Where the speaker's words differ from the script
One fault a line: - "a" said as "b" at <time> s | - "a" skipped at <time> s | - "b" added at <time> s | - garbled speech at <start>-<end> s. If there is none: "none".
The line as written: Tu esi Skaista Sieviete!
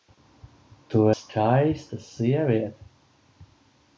- "esi" skipped at 1.0 s